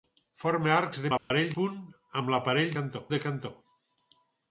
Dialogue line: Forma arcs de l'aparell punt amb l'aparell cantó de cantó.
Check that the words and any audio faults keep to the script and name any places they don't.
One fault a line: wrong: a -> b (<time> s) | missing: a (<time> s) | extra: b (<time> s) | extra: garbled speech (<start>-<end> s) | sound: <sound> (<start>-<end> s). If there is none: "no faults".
sound: dropout (1.2-1.3 s)